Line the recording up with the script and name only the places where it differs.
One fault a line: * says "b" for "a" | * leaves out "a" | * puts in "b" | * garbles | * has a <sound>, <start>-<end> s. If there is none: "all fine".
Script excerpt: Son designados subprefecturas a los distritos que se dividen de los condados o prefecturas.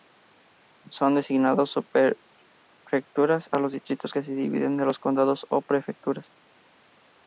all fine